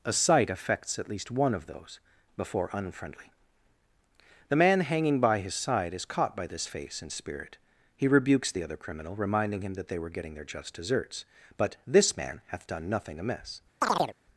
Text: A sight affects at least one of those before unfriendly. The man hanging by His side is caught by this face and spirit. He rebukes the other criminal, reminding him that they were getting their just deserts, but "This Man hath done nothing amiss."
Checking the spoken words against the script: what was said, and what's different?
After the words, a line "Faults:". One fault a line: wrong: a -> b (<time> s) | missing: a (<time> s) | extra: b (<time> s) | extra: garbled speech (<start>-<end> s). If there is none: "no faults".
A sight affects at least one of those before unfriendly. The man hanging by His side is caught by this face and spirit. He rebukes the other criminal, reminding him that they were getting their just deserts, but "This Man hath done nothing amiss."
Faults:
no faults